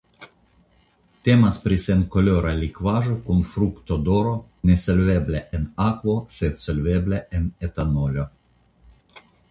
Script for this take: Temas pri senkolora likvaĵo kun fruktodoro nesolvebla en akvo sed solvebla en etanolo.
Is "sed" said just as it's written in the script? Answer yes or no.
yes